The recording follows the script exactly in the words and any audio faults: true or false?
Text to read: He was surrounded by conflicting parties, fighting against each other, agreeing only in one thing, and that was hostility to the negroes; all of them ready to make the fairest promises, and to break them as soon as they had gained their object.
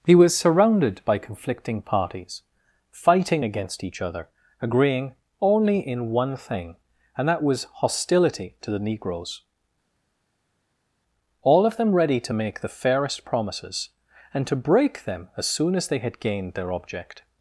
true